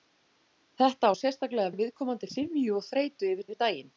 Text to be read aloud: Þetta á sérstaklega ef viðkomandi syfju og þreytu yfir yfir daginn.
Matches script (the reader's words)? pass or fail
pass